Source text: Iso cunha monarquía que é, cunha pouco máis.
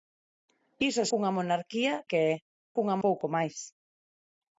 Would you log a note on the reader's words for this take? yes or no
no